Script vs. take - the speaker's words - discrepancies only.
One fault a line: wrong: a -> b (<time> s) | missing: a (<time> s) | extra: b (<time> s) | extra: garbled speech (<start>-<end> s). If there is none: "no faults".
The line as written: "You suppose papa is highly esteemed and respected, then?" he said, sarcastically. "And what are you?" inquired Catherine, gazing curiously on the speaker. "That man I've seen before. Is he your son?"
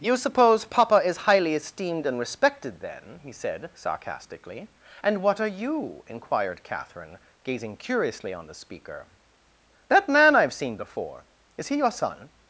no faults